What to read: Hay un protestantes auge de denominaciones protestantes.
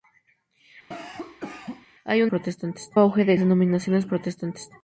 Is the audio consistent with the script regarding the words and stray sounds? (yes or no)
no